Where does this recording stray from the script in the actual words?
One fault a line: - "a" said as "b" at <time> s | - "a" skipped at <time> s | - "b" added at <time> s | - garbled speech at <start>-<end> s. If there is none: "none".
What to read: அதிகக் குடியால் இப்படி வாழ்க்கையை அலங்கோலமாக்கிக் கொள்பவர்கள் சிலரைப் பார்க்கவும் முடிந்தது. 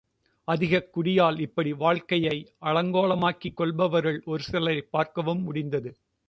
- "ஒரு" added at 4.3 s